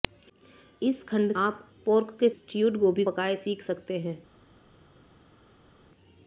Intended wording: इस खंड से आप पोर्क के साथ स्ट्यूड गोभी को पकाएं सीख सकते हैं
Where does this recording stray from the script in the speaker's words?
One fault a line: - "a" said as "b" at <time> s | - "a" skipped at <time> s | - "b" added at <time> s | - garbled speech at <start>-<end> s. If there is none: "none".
- "से" skipped at 1.3 s
- "साथ" skipped at 2.3 s
- "को" skipped at 3.0 s